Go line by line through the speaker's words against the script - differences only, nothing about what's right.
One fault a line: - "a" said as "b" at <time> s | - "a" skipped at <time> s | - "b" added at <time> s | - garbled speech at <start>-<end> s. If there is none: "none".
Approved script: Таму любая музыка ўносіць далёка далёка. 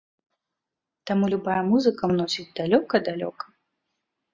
none